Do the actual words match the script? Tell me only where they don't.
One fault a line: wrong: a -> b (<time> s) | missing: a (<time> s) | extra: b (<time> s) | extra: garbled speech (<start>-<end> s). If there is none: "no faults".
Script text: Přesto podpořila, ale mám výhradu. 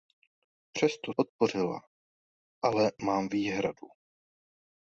no faults